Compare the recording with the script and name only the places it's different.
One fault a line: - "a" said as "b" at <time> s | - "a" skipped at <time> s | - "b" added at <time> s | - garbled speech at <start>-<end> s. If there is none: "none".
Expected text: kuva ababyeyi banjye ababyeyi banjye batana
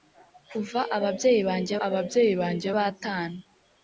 none